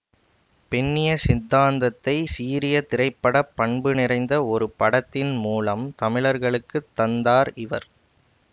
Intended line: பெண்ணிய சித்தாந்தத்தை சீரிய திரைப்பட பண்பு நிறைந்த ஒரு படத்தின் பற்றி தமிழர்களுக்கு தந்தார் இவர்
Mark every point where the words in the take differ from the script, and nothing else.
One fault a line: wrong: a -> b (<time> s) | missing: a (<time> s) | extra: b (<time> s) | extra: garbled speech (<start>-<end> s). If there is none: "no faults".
wrong: பற்றி -> மூலம் (5.4 s)